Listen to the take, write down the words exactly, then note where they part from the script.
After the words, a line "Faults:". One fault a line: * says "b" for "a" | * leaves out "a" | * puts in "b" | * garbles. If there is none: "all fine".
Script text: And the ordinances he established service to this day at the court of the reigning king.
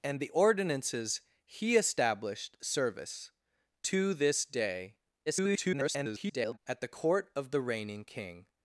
And the ordinances he established service to this day [garbled] at the court of the reigning king.
Faults:
* garbles